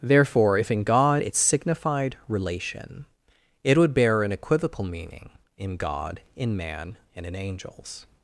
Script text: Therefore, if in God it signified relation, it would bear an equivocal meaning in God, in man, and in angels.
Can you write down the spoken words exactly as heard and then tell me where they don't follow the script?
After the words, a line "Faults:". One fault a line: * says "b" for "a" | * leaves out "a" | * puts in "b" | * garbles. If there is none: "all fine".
Therefore, if in God it signified relation, it would bear an equivocal meaning in God, in man, and in angels.
Faults:
all fine